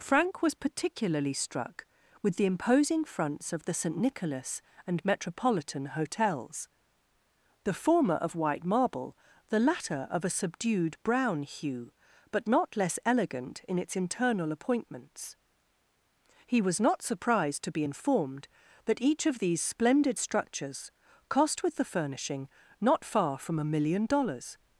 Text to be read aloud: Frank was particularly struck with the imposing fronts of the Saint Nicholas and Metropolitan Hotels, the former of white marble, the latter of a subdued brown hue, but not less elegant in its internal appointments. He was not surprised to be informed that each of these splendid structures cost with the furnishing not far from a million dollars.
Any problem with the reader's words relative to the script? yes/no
no